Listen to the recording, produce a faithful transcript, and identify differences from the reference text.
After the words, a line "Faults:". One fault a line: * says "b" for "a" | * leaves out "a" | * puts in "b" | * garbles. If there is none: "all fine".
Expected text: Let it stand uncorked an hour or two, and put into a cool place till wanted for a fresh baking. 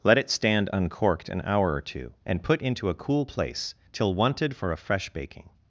Let it stand uncorked an hour or two, and put into a cool place till wanted for a fresh baking.
Faults:
all fine